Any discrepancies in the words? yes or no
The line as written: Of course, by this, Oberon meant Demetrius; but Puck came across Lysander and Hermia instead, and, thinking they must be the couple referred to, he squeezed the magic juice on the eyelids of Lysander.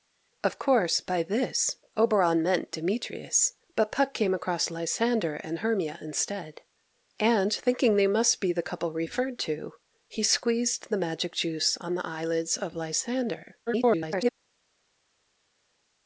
yes